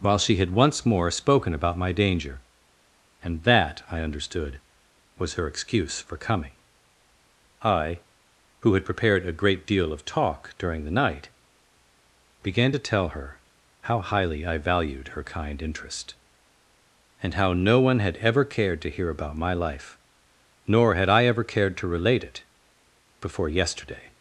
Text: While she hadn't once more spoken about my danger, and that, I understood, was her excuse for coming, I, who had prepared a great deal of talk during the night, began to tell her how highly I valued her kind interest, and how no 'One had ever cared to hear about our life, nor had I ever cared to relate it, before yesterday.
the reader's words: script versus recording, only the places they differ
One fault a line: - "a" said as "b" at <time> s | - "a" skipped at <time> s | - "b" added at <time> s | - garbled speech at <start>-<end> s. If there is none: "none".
- "hadn't" said as "had" at 0.4 s
- "our" said as "my" at 19.4 s